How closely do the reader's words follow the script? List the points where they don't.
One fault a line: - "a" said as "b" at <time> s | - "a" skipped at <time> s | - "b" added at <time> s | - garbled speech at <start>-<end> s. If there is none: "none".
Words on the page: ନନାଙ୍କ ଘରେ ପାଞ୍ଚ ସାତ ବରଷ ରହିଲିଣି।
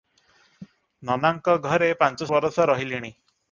- "ସାତ" skipped at 2.3 s